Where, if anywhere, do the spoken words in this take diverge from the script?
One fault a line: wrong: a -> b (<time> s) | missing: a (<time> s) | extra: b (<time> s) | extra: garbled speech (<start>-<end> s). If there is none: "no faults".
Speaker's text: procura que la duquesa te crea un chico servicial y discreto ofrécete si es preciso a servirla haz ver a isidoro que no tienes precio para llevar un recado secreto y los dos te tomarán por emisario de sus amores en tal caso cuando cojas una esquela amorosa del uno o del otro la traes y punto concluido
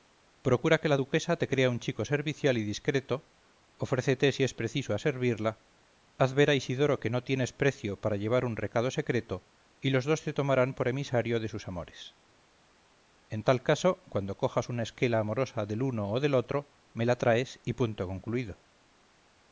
extra: me (16.9 s)